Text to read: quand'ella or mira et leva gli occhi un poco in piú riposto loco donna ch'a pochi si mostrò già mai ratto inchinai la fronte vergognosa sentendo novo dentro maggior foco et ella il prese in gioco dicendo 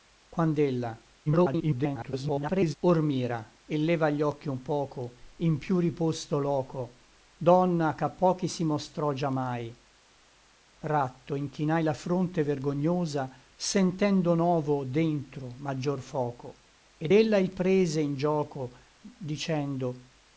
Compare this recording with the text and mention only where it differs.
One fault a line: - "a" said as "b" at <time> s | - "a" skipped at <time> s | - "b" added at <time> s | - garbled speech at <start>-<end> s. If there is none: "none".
- garbled speech at 1.3-2.8 s